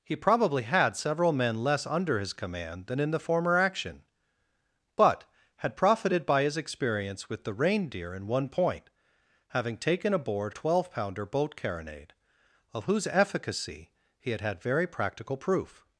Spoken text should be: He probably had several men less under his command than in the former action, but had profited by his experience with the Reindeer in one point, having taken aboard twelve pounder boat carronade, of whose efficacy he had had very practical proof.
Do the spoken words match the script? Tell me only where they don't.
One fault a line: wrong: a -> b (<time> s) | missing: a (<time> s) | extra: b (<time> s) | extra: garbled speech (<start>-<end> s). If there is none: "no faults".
no faults